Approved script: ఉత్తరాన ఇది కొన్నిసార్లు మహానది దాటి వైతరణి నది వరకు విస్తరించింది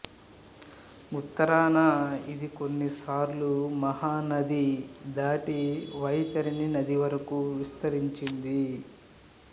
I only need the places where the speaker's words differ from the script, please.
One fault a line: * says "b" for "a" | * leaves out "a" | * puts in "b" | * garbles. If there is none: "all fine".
all fine